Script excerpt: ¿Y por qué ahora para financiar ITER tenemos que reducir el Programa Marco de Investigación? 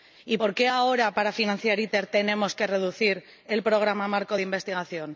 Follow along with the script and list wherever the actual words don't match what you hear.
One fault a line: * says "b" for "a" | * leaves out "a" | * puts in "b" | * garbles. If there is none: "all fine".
all fine